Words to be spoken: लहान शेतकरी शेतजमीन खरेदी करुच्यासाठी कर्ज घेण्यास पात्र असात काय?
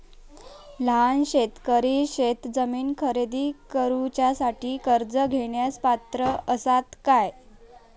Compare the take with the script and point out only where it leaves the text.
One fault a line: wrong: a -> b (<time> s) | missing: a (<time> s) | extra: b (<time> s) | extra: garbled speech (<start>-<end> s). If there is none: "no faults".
no faults